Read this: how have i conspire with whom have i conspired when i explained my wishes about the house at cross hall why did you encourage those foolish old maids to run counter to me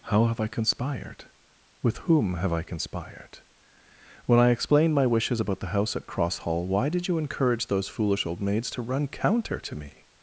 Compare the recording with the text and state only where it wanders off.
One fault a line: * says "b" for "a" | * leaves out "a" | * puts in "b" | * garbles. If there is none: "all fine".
* says "conspired" for "conspire"